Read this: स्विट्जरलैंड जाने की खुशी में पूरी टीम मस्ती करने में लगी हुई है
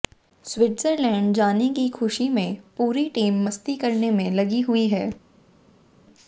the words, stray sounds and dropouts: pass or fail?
pass